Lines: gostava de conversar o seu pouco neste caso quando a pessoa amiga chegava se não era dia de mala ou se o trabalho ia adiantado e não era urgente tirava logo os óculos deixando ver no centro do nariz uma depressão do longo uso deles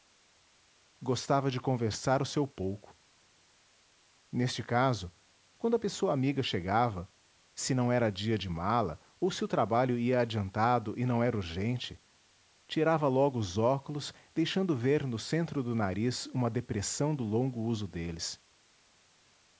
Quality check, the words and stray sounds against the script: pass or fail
pass